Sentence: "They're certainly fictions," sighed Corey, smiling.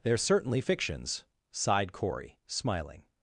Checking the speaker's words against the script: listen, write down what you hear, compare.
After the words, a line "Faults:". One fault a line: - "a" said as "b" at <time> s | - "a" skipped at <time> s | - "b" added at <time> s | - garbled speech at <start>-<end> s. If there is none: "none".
"They're certainly fictions," sighed Corey, smiling.
Faults:
none